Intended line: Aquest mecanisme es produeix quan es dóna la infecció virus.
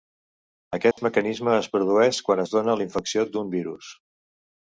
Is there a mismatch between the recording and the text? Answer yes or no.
yes